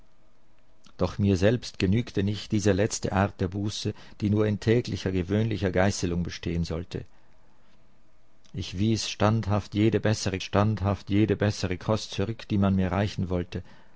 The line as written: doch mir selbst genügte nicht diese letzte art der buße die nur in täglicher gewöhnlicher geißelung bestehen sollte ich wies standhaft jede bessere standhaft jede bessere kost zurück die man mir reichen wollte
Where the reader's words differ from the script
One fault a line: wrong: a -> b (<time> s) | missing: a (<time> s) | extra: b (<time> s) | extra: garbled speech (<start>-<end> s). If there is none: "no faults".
no faults